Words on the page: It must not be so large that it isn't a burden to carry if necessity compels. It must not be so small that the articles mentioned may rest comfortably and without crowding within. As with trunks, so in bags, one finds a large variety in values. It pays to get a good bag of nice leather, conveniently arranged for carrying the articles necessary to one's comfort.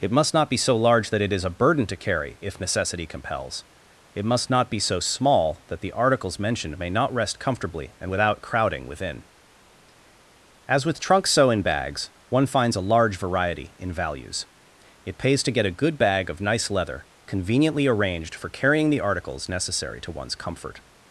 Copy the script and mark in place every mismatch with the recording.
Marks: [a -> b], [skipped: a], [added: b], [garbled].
It must not be so large that it [isn't -> is] a burden to carry if necessity compels. It must not be so small that the articles mentioned may [added: not] rest comfortably and without crowding within. As with trunks, so in bags, one finds a large variety in values. It pays to get a good bag of nice leather, conveniently arranged for carrying the articles necessary to one's comfort.